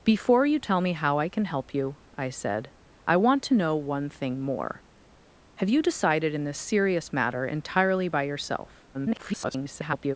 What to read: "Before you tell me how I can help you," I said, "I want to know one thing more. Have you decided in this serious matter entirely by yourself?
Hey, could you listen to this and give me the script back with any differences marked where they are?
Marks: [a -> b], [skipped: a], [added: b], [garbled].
"Before you tell me how I can help you," I said, "I want to know one thing more. Have you decided in this serious matter entirely by yourself? [garbled]